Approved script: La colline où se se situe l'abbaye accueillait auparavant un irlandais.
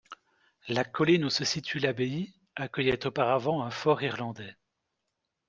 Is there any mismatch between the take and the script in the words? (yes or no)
yes